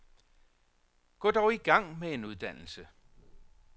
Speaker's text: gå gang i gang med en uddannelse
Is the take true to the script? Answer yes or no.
no